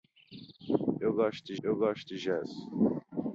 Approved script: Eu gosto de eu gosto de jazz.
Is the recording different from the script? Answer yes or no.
no